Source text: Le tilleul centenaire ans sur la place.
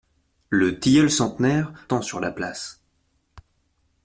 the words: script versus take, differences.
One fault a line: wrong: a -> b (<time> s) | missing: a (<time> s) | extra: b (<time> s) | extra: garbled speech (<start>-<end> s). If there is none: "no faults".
no faults